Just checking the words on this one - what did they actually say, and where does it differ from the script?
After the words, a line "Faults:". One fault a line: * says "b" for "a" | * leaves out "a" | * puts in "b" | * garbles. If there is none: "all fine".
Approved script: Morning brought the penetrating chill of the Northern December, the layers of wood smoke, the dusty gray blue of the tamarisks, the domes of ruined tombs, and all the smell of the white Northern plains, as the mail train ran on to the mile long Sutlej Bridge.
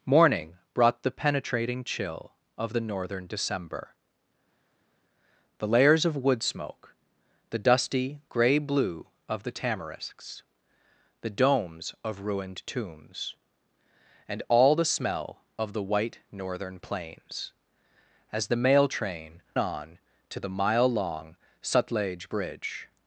Morning brought the penetrating chill of the Northern December, the layers of wood smoke, the dusty gray blue of the tamarisks, the domes of ruined tombs, and all the smell of the white Northern plains, as the mail train on to the mile long Sutlej Bridge.
Faults:
* leaves out "ran"